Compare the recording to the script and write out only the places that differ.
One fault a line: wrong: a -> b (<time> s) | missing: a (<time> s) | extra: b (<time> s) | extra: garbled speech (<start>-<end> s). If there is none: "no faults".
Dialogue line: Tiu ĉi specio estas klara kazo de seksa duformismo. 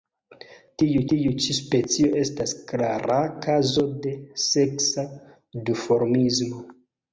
extra: tiu (1.1 s)